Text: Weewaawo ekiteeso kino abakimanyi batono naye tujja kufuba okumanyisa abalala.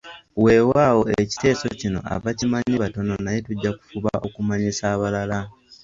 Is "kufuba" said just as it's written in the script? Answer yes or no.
yes